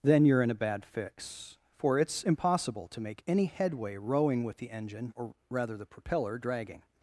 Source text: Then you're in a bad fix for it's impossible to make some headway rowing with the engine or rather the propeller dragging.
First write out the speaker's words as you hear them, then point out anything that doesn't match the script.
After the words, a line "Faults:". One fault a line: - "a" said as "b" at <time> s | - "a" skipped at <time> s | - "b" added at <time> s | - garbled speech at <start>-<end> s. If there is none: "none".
Then you're in a bad fix for it's impossible to make any headway rowing with the engine or rather the propeller dragging.
Faults:
- "some" said as "any" at 3.3 s